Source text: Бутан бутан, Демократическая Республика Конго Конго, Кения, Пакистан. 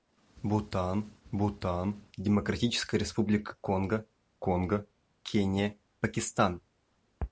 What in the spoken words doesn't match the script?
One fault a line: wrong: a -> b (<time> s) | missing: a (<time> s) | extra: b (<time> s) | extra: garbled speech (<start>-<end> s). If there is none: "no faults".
no faults